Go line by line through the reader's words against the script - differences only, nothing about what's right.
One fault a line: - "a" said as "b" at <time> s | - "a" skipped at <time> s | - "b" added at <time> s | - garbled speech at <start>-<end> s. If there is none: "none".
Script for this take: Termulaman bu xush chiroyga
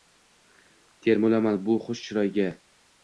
none